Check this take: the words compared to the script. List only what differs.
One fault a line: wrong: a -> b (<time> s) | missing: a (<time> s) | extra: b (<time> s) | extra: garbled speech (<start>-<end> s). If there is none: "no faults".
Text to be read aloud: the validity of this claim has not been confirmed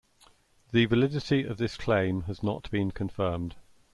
no faults